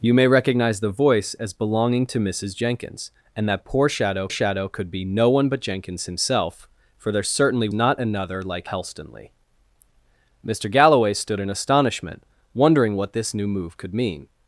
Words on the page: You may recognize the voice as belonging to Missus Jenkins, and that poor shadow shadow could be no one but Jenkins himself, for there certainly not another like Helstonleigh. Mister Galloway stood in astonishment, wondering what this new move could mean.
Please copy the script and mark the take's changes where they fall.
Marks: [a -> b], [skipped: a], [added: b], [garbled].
You may recognize the voice as belonging to Missus Jenkins, and that poor shadow shadow could be no one but Jenkins himself, for there certainly not another like Helstonleigh. Mister Galloway stood in astonishment, wondering what this new move could mean.